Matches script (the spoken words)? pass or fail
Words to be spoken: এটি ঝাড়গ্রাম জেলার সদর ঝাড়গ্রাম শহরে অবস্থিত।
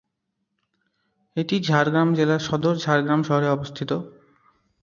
pass